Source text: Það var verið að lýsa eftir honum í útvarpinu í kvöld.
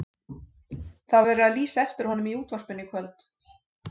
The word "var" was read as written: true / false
false